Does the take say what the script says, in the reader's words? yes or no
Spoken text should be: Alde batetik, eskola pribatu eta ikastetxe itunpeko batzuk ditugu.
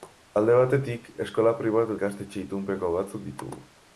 no